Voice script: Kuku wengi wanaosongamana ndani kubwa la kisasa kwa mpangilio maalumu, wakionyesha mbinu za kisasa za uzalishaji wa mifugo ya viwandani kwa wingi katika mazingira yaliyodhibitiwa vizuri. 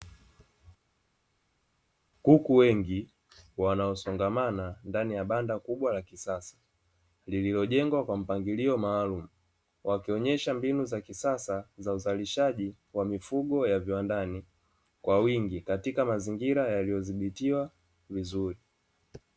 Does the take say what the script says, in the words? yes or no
no